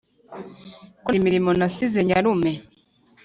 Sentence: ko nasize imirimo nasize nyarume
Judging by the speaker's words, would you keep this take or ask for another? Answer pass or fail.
fail